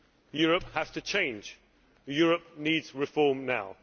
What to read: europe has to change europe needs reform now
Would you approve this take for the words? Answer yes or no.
yes